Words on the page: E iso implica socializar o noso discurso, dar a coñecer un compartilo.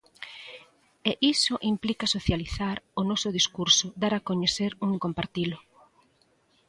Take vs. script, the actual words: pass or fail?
pass